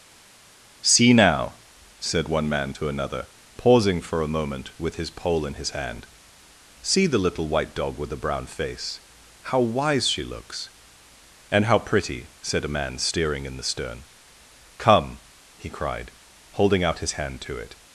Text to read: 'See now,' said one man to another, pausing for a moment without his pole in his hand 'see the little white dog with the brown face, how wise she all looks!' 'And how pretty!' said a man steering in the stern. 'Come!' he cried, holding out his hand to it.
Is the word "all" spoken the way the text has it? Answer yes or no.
no